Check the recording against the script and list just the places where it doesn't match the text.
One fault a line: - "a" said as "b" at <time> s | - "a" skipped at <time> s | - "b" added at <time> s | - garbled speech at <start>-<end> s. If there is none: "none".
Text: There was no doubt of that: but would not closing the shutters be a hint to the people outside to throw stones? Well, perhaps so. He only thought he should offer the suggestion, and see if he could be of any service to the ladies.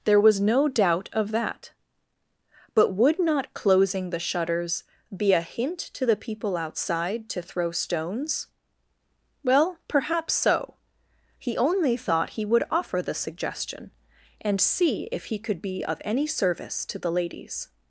- "should" said as "would" at 12.4 s